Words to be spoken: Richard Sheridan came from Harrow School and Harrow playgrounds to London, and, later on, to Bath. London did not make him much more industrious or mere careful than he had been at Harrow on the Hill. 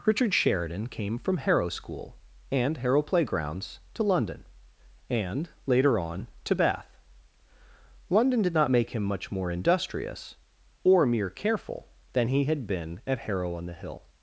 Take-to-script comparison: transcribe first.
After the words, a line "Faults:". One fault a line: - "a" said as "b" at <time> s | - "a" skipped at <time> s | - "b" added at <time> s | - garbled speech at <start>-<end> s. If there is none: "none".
Richard Sheridan came from Harrow School and Harrow playgrounds to London, and, later on, to Bath. London did not make him much more industrious or mere careful than he had been at Harrow on the Hill.
Faults:
none